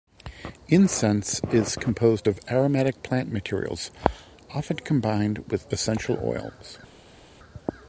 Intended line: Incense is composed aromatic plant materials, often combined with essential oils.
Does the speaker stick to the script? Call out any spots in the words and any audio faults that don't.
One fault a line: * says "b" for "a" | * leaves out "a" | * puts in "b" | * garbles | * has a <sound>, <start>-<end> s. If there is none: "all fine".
* puts in "of"